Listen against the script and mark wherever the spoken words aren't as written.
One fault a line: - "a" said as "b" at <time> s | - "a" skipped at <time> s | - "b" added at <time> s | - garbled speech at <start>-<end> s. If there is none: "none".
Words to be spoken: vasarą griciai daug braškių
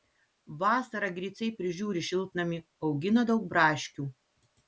- "prižiūri šiltnamį augina" added at 1.6 s